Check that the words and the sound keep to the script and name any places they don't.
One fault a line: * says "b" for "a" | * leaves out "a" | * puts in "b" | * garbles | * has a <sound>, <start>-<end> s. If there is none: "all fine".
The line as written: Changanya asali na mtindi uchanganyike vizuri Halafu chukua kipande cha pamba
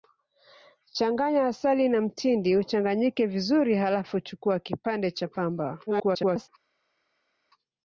* garbles